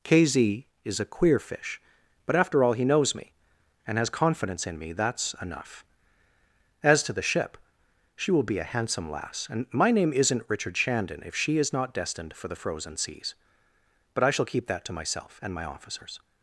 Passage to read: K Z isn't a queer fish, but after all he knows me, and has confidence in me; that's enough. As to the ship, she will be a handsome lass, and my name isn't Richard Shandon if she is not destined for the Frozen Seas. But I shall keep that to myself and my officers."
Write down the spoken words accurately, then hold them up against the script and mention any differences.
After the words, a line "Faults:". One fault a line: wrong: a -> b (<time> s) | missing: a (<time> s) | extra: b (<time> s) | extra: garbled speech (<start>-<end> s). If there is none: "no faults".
K Z is a queer fish, but after all he knows me, and has confidence in me; that's enough. As to the ship, she will be a handsome lass, and my name isn't Richard Shandon if she is not destined for the Frozen Seas. But I shall keep that to myself and my officers."
Faults:
wrong: isn't -> is (0.8 s)